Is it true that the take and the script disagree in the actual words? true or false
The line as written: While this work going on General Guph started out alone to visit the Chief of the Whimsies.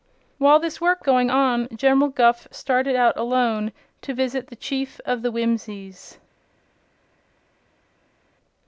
false